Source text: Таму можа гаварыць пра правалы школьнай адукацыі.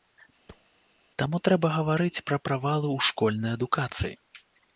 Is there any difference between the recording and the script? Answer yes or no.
yes